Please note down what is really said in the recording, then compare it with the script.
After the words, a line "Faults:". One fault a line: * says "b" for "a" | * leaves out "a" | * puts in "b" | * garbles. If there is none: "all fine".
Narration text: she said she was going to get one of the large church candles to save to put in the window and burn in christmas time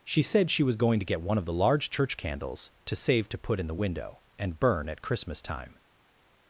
she said she was going to get one of the large church candles to save to put in the window and burn at christmas time
Faults:
* says "at" for "in"